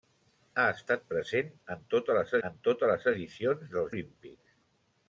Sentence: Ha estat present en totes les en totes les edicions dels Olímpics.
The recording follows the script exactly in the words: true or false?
true